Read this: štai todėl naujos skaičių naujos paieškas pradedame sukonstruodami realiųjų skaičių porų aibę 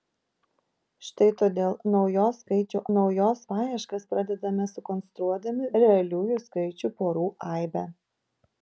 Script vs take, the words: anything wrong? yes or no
no